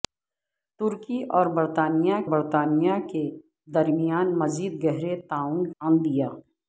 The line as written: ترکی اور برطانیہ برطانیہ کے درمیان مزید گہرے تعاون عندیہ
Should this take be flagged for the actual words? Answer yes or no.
no